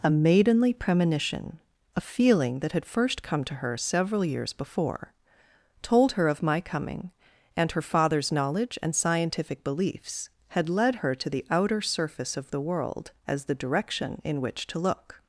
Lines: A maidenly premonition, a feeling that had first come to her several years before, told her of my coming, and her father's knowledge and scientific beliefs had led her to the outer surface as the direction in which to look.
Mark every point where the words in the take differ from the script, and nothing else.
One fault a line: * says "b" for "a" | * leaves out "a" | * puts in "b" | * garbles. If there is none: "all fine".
* puts in "of the world"